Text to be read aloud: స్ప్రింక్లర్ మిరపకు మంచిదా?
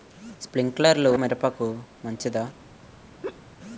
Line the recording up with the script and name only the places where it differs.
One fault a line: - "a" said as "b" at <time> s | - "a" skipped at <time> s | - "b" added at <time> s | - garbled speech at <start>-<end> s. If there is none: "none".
none